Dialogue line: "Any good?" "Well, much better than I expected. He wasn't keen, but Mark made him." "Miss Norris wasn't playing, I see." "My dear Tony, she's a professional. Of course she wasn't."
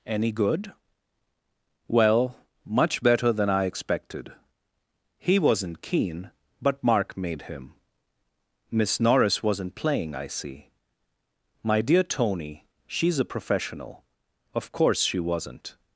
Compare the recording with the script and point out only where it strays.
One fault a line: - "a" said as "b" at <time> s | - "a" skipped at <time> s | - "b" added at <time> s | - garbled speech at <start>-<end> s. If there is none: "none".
none